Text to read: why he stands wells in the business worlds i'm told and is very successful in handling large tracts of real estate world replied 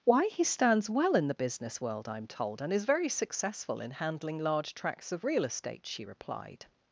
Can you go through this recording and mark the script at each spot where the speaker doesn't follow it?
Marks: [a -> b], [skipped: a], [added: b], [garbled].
why he stands [wells -> well] in the business [worlds -> world] i'm told and is very successful in handling large tracts of real estate [world -> she] replied